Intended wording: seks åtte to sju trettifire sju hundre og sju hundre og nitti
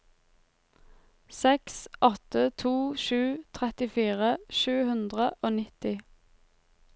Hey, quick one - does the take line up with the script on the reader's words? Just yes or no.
no